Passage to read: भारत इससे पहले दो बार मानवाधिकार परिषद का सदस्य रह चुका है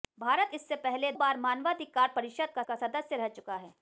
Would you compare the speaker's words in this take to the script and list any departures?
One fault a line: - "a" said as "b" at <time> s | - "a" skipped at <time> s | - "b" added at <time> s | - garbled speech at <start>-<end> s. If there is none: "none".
- "दो" skipped at 1.1 s
- "का" added at 2.6 s